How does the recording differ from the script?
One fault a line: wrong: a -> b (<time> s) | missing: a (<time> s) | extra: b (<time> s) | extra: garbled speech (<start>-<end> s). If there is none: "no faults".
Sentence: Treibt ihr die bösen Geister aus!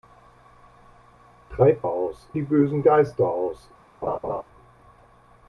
wrong: ihr -> aus (1.8 s)